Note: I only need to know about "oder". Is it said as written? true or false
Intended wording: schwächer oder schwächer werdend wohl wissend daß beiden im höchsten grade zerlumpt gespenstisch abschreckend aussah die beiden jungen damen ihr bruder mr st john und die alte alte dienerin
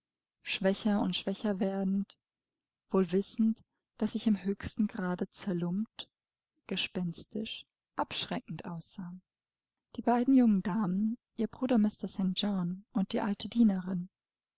false